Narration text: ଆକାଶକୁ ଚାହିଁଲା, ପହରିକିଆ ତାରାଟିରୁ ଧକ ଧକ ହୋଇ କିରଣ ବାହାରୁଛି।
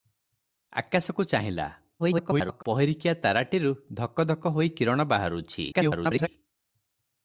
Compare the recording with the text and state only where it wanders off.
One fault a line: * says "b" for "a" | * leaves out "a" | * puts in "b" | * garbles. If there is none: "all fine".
* garbles
* garbles